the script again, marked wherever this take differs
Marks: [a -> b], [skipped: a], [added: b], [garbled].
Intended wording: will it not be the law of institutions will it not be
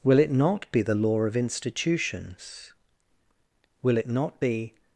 will it not be the law of institutions will it not be